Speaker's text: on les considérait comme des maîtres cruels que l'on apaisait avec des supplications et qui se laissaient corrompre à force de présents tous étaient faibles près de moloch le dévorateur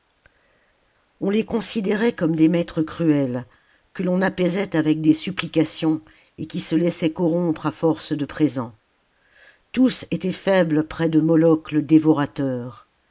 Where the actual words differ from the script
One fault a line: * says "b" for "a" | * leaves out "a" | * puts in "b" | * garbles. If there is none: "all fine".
all fine